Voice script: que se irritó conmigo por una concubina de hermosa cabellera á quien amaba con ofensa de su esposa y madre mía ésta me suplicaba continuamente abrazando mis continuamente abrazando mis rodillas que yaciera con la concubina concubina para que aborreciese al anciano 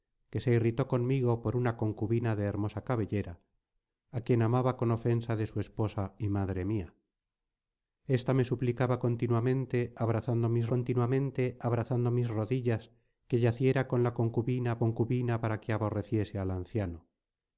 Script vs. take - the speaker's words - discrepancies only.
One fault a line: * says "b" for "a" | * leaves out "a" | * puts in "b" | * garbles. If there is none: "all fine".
all fine